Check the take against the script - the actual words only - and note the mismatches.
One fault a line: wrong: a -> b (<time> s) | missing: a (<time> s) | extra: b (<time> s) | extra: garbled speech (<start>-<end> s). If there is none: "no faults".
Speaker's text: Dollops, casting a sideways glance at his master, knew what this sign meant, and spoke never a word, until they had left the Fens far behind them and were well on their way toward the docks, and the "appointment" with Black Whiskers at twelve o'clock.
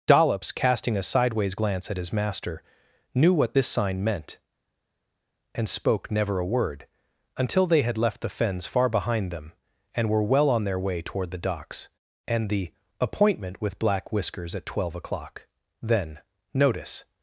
extra: Then Notice (15.8 s)